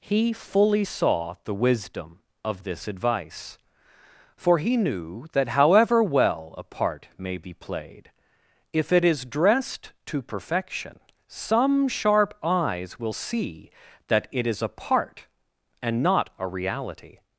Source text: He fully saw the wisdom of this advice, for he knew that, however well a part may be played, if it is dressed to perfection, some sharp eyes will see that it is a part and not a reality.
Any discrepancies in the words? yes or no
no